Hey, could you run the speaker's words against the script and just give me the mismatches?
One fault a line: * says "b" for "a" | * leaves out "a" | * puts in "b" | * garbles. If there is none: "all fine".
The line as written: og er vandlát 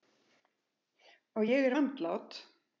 * puts in "ég"